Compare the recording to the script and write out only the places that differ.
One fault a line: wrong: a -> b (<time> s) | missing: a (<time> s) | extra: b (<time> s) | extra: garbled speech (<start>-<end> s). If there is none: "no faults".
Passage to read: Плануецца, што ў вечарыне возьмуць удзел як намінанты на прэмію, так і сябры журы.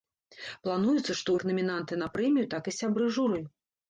missing: вечарыне возьмуць удзел (1.4 s)